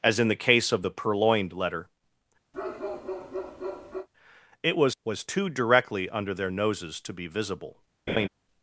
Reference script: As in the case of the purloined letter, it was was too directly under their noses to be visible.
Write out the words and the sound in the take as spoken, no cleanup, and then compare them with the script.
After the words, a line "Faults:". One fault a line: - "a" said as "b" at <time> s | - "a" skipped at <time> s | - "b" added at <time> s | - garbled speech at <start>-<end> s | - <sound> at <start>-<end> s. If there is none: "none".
As in the case of the purloined letter, it was was too directly under their noses to be visible.
Faults:
- bark at 2.5-4.1 s
- laugh at 8.1-8.3 s